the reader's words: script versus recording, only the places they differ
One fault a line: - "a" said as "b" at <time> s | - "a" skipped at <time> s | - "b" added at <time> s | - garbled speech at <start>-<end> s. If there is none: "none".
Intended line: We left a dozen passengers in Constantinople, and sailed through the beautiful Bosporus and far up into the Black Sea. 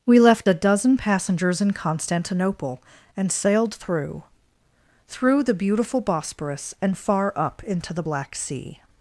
- "through" added at 5.1 s